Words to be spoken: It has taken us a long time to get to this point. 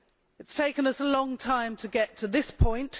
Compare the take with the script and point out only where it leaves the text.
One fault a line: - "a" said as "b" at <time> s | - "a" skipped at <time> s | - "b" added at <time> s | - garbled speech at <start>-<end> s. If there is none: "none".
none